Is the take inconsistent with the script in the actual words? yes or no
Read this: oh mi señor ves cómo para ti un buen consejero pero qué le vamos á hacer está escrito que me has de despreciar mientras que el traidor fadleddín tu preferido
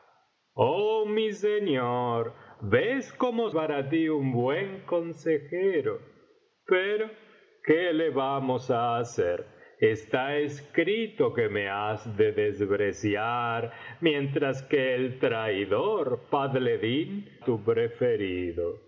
no